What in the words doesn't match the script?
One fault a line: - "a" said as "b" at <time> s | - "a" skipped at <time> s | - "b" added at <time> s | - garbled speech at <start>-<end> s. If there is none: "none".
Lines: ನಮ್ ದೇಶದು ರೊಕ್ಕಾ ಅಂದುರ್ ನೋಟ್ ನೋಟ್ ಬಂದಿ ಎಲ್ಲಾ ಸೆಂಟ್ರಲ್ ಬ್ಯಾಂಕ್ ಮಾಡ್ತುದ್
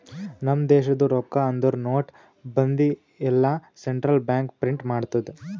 - "ನೋಟ್" skipped at 2.1 s
- "ಪ್ರಿಂಟ್" added at 4.6 s